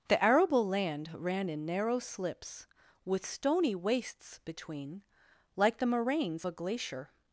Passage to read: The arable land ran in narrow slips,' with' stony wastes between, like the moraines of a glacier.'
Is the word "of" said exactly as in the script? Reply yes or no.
no